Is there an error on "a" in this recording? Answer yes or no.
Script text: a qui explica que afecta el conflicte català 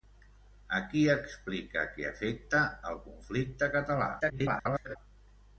no